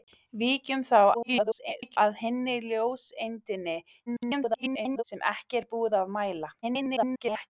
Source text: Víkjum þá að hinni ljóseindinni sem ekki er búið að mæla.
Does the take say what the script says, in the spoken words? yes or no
no